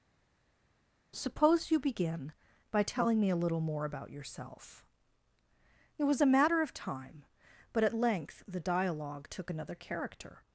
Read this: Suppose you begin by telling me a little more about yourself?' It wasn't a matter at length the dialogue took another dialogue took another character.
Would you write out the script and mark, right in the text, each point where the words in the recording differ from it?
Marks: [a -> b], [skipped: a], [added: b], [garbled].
Suppose you begin by telling me a little more about yourself?' It [wasn't -> was] a matter [added: of time but] at length the dialogue took another [skipped: dialogue took another] character.